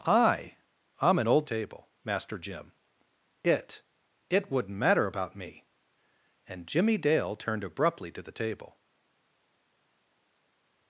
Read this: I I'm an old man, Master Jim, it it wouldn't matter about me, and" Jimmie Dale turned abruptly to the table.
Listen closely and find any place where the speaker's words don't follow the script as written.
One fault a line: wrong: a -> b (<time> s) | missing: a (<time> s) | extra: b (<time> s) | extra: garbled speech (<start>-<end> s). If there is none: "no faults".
wrong: man -> table (1.4 s)